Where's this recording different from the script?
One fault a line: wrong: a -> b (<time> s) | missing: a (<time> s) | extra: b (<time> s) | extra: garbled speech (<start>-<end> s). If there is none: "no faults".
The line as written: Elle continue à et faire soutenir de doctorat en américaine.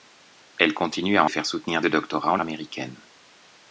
no faults